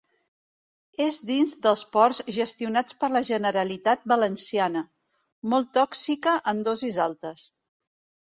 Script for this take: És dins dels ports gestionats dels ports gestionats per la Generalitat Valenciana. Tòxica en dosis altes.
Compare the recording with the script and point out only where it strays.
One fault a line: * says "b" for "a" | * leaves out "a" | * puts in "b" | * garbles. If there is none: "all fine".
* leaves out "dels ports gestionats"
* puts in "Molt"